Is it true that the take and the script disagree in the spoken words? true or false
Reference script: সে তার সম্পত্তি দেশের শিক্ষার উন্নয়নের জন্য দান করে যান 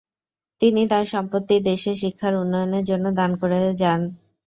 true